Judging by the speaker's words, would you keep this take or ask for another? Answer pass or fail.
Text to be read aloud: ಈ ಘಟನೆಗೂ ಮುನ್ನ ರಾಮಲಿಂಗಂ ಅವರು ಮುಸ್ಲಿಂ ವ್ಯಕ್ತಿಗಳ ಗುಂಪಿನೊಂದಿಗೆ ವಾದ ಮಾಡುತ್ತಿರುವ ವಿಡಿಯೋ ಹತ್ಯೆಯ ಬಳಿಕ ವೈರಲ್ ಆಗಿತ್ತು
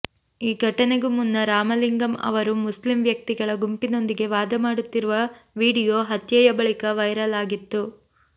pass